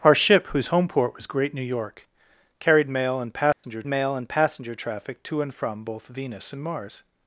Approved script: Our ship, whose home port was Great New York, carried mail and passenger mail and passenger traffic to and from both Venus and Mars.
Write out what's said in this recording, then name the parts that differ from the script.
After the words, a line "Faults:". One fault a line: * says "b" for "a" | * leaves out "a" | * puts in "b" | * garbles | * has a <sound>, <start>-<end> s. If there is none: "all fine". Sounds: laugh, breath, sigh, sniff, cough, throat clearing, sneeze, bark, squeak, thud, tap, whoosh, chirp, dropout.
Our ship, whose home port was Great New York, carried mail and passenger mail and passenger traffic to and from both Venus and Mars.
Faults:
* has a dropout, 3.5-3.6 s